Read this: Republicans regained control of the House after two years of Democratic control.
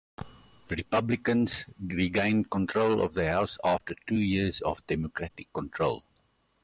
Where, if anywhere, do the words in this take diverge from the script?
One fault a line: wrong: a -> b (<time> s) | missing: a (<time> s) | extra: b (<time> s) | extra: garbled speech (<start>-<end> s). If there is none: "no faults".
no faults